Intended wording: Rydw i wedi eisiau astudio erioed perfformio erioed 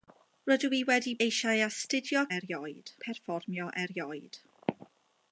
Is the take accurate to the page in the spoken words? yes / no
yes